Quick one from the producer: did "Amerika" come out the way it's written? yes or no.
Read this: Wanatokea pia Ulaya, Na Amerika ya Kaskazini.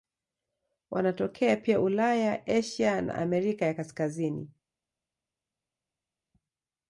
yes